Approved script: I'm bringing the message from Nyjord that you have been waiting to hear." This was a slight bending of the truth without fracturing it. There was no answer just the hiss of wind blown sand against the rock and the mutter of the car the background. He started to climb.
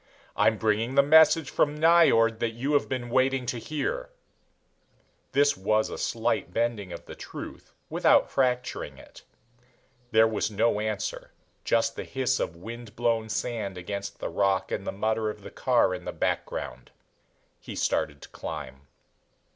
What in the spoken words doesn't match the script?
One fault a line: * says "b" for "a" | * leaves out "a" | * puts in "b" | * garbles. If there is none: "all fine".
* puts in "in"